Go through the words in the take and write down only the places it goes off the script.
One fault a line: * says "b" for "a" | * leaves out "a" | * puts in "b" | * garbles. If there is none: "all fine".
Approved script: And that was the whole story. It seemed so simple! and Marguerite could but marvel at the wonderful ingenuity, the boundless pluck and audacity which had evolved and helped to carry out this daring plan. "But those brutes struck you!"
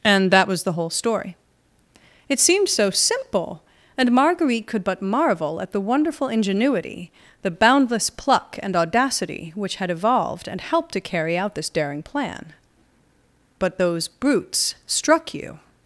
all fine